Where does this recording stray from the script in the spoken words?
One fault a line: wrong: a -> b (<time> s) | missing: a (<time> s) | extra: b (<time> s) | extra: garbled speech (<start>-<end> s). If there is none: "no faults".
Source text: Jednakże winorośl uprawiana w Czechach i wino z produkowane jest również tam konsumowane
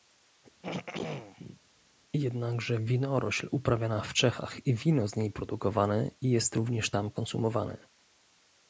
extra: niej (5.2 s)